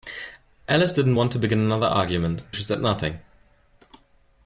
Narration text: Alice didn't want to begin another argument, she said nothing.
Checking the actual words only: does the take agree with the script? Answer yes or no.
yes